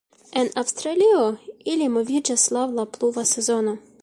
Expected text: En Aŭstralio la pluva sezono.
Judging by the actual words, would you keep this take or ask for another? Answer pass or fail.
fail